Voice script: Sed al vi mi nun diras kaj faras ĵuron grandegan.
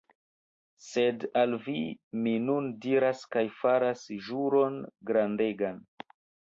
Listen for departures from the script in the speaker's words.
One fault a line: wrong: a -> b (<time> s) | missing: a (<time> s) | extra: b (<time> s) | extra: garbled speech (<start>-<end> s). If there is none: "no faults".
no faults